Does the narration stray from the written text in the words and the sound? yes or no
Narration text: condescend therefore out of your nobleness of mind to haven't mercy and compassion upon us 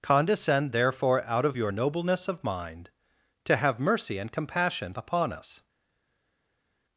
yes